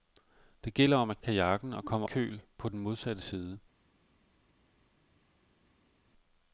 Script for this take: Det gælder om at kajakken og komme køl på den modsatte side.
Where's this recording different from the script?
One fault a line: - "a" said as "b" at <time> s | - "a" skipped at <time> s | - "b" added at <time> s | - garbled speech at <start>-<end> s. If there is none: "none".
none